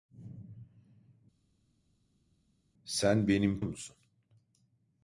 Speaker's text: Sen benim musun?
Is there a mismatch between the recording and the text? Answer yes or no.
no